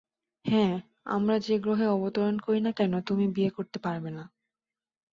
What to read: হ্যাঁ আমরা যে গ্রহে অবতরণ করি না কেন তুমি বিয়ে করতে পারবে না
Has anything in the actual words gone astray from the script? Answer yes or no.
no